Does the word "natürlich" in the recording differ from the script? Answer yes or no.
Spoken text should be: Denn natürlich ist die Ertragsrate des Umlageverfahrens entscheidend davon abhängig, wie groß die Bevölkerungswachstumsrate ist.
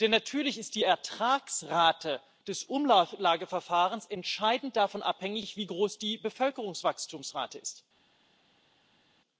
no